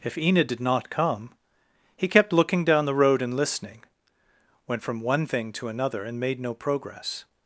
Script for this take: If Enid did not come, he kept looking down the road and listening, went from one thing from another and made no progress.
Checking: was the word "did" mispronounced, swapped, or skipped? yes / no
no